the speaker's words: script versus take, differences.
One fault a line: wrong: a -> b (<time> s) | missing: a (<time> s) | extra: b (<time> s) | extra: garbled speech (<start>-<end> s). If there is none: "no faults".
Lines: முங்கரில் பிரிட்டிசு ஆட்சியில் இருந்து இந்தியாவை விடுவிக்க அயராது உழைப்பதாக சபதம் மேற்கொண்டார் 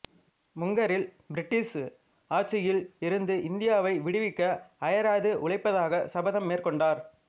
no faults